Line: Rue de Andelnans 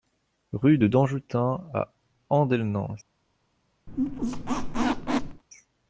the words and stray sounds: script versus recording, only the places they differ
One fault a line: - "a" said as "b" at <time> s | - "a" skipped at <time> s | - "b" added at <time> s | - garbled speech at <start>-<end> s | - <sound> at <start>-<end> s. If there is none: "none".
- "Danjoutin à" added at 0.9 s
- squeak at 3.9-5.4 s